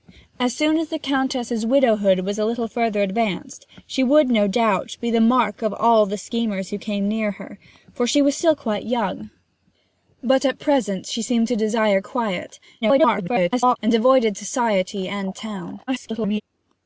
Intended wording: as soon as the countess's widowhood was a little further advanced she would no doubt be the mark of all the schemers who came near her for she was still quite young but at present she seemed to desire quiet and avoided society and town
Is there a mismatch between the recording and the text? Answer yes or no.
yes